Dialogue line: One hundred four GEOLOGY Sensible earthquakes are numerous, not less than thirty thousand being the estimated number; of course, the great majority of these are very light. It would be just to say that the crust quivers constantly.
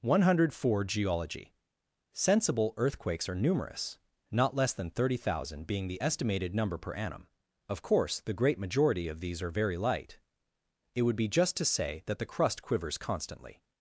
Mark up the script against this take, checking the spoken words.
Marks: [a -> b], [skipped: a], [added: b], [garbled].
One hundred four GEOLOGY Sensible earthquakes are numerous, not less than thirty thousand being the estimated number; [added: per annum] of course, the great majority of these are very light. It would be just to say that the crust quivers constantly.